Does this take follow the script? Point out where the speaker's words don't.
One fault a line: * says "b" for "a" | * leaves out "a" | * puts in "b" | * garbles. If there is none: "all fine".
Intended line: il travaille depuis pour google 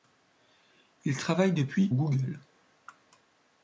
* leaves out "pour"